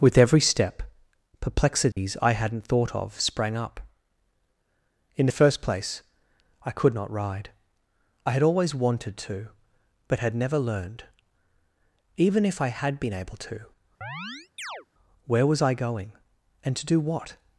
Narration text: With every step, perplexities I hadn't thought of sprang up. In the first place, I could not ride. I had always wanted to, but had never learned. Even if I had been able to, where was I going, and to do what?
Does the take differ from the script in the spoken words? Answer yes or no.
no